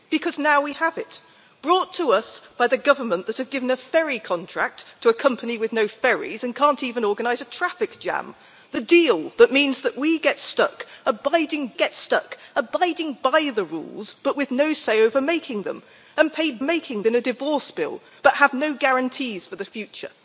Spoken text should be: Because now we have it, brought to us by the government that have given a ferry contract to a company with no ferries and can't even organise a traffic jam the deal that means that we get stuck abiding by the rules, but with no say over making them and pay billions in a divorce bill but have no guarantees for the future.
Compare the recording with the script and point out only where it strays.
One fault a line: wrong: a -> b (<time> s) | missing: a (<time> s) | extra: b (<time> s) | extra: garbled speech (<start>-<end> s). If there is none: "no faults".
extra: get stuck abiding (11.7 s)
wrong: billions -> making (16.6 s)